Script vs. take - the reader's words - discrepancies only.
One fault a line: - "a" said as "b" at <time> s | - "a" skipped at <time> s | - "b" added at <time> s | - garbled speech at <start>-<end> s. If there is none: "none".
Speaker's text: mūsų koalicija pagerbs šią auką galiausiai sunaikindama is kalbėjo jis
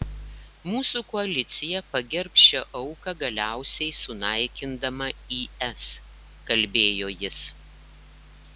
none